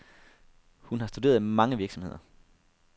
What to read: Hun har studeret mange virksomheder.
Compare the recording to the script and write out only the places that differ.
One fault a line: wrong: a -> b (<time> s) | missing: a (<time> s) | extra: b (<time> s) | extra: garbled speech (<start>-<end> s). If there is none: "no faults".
no faults